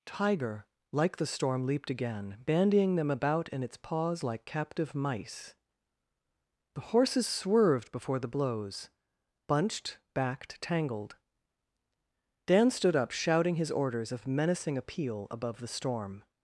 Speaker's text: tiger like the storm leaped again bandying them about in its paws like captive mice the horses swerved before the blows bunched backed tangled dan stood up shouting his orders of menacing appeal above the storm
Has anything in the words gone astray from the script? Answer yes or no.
no